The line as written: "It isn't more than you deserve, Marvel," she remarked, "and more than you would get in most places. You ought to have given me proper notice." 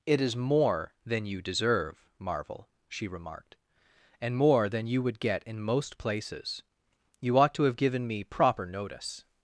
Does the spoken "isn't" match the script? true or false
false